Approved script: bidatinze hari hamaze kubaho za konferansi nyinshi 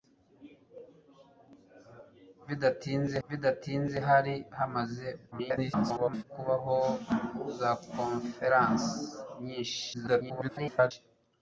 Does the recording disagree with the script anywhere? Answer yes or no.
yes